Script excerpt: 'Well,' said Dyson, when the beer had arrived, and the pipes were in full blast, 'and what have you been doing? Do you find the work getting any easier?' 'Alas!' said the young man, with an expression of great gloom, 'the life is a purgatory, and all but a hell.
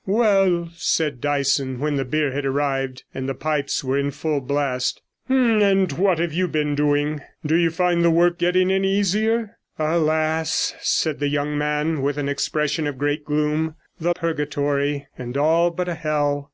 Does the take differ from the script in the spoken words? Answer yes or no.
yes